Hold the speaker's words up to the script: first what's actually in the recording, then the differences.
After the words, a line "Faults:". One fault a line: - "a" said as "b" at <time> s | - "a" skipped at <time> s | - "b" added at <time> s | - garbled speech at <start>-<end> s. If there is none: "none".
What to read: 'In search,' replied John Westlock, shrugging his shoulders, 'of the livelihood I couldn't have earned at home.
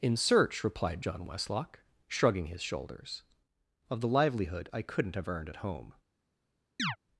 'In search,' replied John Westlock, shrugging his shoulders, 'of the livelihood I couldn't have earned at home.
Faults:
none